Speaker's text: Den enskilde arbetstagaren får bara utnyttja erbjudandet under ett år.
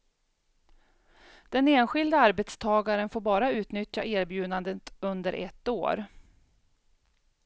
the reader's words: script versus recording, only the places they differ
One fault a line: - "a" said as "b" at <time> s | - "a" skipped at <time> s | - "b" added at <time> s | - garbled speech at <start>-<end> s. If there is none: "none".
none